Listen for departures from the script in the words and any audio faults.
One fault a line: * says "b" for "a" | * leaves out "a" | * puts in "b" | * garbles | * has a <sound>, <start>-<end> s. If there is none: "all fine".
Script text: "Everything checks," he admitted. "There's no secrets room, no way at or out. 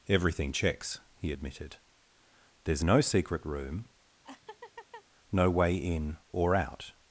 * says "secret" for "secrets"
* has a laugh, 4.2-5.0 s
* says "in" for "at"